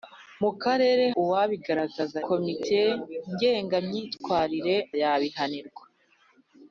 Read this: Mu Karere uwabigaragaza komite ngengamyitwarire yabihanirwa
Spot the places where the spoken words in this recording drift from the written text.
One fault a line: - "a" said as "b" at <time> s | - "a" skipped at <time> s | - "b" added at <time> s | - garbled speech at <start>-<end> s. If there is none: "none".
none